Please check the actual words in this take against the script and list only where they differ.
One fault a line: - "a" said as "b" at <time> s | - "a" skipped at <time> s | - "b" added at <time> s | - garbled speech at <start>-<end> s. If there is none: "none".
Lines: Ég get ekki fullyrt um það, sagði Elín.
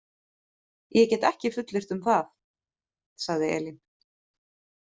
none